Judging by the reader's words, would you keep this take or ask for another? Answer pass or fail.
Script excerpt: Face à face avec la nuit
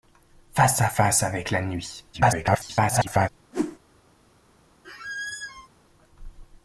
fail